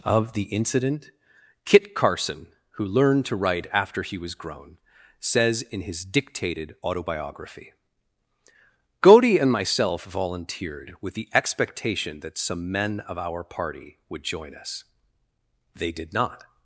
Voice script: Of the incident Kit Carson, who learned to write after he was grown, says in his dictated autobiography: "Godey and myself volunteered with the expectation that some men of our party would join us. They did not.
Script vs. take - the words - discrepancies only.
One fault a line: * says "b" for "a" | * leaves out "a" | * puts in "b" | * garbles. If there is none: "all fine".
all fine